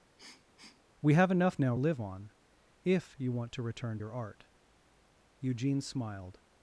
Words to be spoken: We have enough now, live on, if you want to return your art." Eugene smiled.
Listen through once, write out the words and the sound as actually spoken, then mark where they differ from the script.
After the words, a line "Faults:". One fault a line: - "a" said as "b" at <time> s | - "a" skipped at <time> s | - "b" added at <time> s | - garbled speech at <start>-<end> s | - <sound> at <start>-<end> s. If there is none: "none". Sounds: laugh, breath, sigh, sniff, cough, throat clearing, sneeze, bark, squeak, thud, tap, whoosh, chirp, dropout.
We have enough now, live on, if you want to return your art." Eugene smiled.
Faults:
- sniff at 0.2-0.8 s